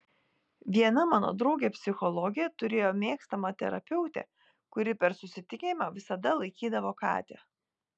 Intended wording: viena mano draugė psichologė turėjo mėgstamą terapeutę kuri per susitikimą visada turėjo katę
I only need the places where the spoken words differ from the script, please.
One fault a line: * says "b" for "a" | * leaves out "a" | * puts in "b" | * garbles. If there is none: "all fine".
* says "laikydavo" for "turėjo"